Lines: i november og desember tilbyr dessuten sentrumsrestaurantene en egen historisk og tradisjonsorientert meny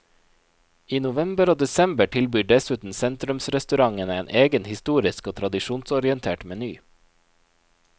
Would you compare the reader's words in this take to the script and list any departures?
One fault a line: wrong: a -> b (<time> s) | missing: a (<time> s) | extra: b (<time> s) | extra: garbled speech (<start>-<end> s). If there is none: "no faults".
no faults